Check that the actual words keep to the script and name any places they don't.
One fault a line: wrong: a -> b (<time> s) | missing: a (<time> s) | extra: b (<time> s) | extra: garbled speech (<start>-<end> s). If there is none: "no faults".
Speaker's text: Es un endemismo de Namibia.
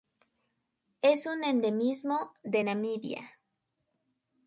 no faults